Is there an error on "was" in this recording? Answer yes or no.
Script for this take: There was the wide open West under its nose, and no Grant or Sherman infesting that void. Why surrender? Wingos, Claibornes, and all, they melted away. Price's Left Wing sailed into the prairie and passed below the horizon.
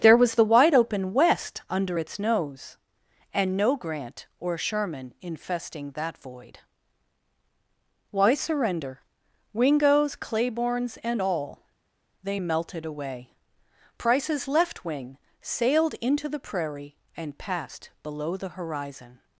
no